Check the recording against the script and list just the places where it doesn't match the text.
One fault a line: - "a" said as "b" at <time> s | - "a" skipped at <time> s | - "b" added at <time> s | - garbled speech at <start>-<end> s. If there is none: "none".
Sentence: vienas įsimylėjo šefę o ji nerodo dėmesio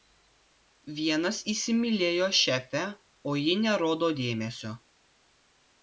none